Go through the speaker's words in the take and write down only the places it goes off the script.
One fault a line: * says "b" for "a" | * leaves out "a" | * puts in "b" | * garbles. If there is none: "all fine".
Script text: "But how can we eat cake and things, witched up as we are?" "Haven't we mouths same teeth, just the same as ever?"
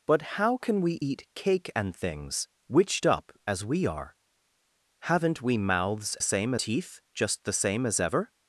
all fine